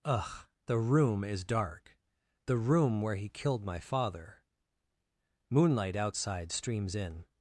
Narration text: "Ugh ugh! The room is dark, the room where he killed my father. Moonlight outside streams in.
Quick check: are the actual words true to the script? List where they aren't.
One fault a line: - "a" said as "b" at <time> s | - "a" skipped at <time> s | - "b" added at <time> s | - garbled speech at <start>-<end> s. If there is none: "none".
- "ugh" skipped at 0.5 s